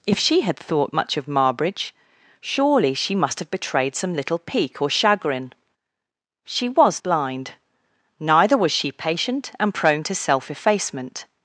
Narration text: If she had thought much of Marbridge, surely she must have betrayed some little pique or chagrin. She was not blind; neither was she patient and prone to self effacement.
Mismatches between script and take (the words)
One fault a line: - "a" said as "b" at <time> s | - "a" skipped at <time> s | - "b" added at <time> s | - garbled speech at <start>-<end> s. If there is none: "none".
- "not" skipped at 7.0 s